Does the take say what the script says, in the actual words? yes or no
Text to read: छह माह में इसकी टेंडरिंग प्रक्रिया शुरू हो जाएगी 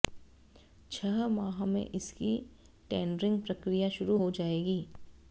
yes